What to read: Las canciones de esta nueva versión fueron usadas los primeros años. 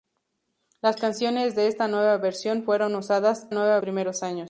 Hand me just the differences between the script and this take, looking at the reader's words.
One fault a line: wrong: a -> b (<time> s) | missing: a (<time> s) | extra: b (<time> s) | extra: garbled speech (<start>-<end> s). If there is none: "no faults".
wrong: los -> nueva (3.5 s)